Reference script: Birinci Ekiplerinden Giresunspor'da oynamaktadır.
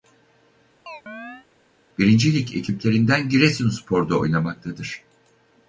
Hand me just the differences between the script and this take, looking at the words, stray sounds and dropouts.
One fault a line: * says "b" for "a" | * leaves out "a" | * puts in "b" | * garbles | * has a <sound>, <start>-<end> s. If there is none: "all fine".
* has a chirp, 0.9-1.5 s
* puts in "Lig"